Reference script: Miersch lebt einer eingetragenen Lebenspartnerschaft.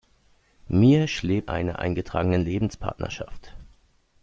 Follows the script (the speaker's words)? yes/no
yes